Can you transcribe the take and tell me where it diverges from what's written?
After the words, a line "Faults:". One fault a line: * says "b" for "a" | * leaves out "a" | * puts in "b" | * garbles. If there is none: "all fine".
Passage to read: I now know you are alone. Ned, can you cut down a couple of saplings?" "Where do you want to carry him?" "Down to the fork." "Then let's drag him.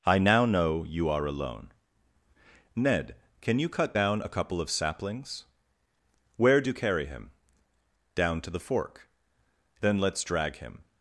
I now know you are alone. Ned, can you cut down a couple of saplings?" "Where do carry him?" "Down to the fork." "Then let's drag him.
Faults:
* leaves out "you want to"